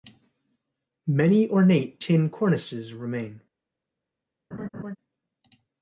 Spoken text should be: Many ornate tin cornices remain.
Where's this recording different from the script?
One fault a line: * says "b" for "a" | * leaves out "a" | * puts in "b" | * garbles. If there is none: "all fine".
all fine